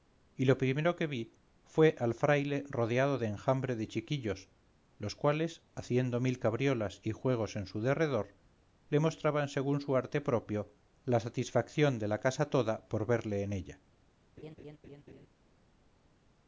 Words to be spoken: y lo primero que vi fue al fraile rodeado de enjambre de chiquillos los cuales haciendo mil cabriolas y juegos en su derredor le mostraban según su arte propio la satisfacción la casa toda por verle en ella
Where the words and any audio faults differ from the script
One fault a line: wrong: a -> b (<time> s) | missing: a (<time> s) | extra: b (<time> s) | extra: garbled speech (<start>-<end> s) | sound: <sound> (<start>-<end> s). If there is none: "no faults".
extra: de (12.0 s)
sound: laugh (14.4-15.3 s)